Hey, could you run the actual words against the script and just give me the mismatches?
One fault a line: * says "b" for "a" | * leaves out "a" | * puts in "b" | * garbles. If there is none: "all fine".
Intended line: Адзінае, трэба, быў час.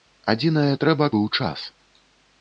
all fine